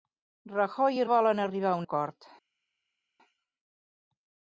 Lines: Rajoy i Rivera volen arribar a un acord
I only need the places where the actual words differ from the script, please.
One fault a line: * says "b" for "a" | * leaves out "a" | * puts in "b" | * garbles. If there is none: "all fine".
* leaves out "Rivera"
* leaves out "un"